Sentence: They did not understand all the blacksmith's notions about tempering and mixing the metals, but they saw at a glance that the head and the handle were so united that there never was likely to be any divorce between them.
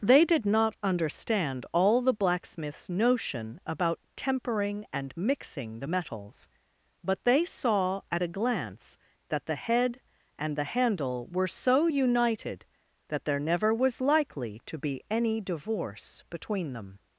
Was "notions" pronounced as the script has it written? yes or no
no